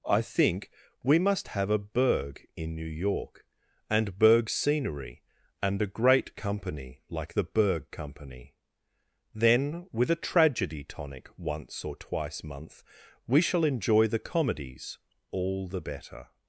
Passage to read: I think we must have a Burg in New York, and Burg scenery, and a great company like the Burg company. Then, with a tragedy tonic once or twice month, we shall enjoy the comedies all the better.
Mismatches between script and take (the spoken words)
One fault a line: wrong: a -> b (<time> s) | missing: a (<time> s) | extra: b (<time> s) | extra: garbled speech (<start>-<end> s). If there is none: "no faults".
no faults